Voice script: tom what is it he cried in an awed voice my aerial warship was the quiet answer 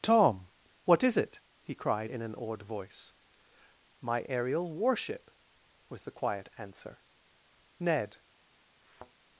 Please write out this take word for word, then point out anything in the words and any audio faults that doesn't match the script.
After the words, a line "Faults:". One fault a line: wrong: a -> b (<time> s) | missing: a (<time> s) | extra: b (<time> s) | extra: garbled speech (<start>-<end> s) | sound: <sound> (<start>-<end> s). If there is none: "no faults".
tom what is it he cried in an awed voice my aerial warship was the quiet answer ned
Faults:
extra: ned (7.8 s)
sound: thud (8.8-9.1 s)